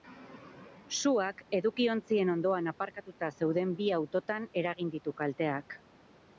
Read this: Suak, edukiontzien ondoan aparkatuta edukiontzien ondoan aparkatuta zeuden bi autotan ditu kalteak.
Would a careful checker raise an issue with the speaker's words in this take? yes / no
yes